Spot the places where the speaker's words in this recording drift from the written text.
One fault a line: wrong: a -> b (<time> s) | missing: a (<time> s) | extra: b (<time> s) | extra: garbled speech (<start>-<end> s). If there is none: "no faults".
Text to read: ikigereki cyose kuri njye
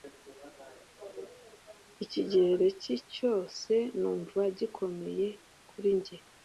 extra: numva gikomeye (4.0 s)